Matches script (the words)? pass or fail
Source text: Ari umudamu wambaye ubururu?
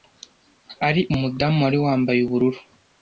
fail